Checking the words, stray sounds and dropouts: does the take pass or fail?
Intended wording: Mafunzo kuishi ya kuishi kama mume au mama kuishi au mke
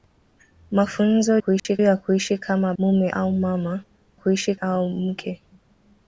fail